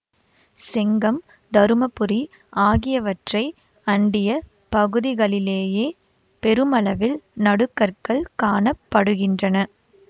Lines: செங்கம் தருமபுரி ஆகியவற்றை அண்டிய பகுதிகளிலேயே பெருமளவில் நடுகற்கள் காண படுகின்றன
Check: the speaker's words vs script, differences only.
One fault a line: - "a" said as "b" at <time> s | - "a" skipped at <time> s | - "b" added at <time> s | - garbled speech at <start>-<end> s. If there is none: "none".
none